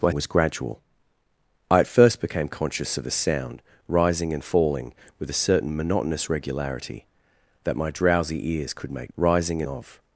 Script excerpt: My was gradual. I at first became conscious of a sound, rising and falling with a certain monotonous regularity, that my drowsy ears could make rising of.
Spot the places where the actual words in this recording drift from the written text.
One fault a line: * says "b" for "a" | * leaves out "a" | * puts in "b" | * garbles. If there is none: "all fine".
all fine